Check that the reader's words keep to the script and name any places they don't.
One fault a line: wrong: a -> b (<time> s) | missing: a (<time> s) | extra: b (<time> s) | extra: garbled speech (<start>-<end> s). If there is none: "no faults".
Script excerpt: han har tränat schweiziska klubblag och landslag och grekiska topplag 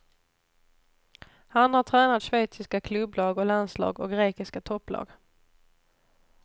no faults